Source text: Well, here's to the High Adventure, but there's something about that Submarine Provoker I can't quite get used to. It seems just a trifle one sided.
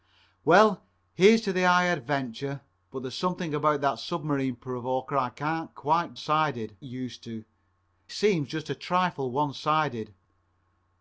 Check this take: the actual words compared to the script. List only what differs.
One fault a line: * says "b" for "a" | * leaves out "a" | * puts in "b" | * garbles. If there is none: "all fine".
* says "sided" for "get"
* leaves out "It"